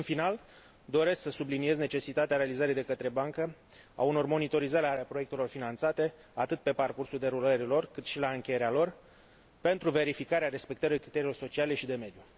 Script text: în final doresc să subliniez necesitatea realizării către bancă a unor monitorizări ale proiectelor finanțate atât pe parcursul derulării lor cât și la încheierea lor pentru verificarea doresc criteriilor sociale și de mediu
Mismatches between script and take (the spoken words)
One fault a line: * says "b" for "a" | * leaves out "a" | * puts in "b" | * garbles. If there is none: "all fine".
* puts in "de"
* says "respectării" for "doresc"